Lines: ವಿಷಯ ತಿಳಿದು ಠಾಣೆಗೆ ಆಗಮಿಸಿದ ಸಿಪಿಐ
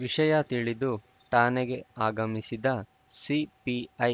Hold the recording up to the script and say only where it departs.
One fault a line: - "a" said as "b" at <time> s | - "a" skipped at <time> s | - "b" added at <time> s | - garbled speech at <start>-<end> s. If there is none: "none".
none